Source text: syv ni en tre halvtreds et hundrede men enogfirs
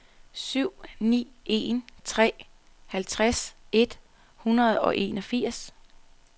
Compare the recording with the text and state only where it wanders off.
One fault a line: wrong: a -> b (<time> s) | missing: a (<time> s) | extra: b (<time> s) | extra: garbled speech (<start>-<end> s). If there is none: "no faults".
wrong: men -> og (4.8 s)